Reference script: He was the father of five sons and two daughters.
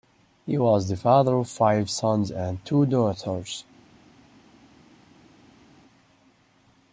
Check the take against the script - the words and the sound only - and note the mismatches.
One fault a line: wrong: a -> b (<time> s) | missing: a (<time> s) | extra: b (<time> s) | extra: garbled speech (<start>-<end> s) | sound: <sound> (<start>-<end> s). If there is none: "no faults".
no faults